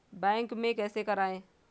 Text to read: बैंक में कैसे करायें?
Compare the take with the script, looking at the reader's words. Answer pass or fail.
pass